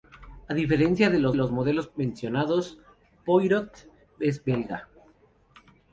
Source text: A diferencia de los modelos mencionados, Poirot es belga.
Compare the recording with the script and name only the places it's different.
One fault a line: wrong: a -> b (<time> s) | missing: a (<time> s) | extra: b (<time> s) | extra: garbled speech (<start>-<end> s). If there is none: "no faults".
extra: los (1.3 s)